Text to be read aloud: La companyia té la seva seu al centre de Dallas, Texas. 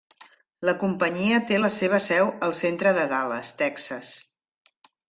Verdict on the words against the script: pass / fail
pass